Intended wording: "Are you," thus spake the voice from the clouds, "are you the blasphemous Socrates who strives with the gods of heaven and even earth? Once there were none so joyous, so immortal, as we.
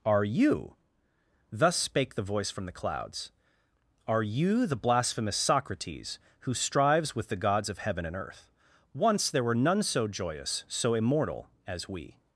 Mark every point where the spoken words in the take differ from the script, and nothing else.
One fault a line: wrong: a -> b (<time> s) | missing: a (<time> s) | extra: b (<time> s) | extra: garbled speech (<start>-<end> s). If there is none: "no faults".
missing: even (8.2 s)